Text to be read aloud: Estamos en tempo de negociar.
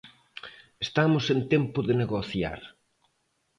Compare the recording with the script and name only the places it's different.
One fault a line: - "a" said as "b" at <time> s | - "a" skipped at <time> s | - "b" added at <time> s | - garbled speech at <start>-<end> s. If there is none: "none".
none